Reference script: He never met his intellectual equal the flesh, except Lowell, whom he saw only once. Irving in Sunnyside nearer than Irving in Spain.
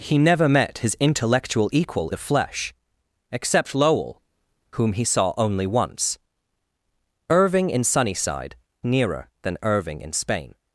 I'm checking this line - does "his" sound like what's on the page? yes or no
yes